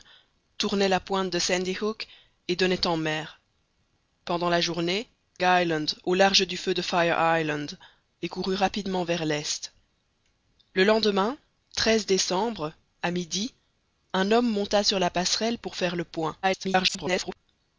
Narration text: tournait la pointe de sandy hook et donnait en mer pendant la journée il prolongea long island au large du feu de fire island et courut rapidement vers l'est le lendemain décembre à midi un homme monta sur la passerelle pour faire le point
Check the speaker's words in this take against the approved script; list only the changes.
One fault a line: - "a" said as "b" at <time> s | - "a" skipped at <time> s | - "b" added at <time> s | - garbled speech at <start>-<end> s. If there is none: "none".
- "il prolongea long" skipped at 5.1 s
- garbled speech at 16.4-17.4 s